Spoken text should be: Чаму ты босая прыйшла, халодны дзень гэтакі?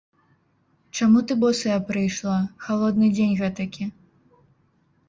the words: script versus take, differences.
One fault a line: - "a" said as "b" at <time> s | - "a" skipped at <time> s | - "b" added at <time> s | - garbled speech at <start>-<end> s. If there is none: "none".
none